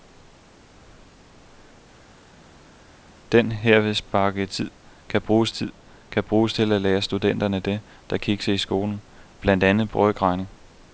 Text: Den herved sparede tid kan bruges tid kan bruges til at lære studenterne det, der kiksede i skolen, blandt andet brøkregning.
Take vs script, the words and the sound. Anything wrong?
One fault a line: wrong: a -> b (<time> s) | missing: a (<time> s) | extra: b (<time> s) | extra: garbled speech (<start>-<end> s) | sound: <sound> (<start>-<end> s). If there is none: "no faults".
no faults